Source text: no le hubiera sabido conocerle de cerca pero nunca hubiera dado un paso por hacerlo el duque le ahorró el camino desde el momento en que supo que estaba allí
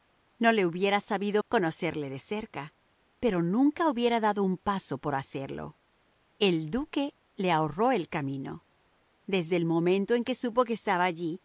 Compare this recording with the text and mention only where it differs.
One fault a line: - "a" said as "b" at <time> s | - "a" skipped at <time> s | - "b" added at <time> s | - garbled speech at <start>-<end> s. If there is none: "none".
none